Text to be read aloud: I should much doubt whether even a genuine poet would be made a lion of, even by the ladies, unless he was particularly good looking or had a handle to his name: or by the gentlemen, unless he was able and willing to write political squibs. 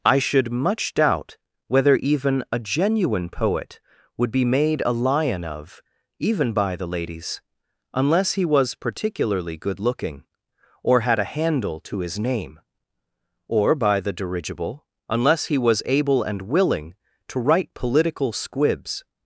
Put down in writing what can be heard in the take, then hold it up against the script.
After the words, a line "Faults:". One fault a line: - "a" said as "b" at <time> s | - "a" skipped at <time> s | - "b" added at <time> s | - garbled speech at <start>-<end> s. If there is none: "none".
I should much doubt whether even a genuine poet would be made a lion of, even by the ladies, unless he was particularly good looking or had a handle to his name: or by the dirigible, unless he was able and willing to write political squibs.
Faults:
- "gentlemen" said as "dirigible" at 14.1 s